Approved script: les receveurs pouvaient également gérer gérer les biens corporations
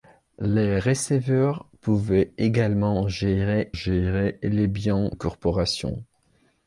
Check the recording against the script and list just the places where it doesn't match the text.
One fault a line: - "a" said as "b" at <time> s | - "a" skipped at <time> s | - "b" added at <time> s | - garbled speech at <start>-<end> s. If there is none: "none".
none